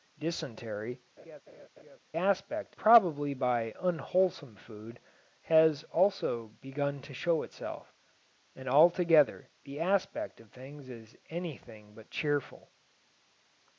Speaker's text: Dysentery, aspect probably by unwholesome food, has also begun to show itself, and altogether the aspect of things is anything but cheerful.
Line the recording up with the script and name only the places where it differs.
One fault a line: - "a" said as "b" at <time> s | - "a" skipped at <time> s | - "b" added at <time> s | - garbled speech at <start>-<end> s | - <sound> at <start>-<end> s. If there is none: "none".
- laugh at 1.2-2.0 s